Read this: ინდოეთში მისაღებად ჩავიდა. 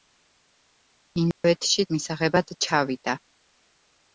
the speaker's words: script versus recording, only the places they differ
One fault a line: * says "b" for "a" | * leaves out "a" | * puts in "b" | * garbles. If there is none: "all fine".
all fine